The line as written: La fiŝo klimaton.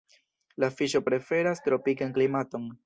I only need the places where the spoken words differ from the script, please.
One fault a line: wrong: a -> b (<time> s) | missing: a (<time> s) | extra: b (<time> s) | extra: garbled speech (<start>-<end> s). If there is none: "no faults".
extra: preferas tropikan (1.1 s)